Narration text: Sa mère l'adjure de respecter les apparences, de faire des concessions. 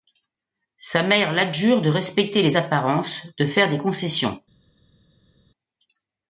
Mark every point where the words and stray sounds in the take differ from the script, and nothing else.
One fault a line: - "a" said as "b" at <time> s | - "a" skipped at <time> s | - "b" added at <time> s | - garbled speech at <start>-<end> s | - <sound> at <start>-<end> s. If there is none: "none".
none